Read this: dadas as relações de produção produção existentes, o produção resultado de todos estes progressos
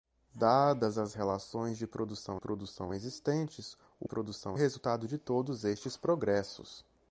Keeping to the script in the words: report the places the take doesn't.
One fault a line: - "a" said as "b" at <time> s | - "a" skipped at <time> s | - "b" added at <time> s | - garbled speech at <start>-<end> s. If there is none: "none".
none